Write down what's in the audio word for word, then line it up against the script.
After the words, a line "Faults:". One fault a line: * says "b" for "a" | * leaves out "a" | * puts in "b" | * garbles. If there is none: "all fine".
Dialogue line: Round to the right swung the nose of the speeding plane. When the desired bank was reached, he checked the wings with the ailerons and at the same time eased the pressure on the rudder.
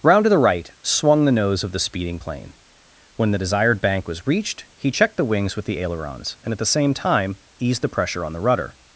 Round to the right swung the nose of the speeding plane. When the desired bank was reached, he checked the wings with the ailerons and at the same time eased the pressure on the rudder.
Faults:
all fine